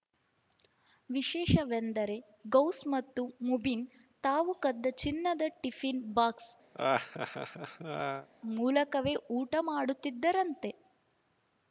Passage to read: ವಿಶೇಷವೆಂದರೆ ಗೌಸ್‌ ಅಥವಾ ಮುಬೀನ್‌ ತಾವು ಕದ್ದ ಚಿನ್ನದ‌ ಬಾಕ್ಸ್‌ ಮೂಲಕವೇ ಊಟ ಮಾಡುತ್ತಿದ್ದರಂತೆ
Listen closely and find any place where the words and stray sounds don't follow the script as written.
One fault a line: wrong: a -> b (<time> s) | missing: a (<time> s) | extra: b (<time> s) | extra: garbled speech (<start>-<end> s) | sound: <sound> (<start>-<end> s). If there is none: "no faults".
wrong: ಅಥವಾ -> ಮತ್ತು (2.9 s)
extra: ಟಿಫಿನ್ (5.6 s)
sound: laugh (6.7-8.3 s)